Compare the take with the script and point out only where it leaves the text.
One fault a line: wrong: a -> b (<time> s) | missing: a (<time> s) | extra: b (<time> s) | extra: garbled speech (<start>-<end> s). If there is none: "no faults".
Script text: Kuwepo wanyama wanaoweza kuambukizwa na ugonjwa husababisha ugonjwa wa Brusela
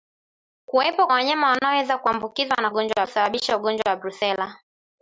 no faults